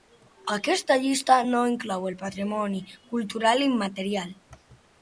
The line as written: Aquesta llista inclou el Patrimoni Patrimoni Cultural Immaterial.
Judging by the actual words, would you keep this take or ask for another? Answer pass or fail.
fail